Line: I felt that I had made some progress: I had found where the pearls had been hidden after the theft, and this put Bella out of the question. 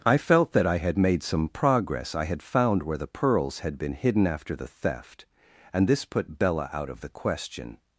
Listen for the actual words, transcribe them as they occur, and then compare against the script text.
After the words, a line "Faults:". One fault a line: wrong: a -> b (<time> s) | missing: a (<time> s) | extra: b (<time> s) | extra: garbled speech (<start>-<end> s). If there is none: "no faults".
I felt that I had made some progress: I had found where the pearls had been hidden after the theft, and this put Bella out of the question.
Faults:
no faults